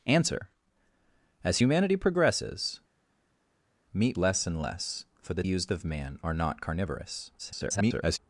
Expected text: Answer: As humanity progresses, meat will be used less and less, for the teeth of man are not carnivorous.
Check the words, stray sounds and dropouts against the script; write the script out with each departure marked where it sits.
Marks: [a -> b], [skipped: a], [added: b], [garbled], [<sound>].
Answer: As humanity progresses, meat [skipped: will be used] less and less, for the [teeth -> used] of man are not carnivorous. [garbled]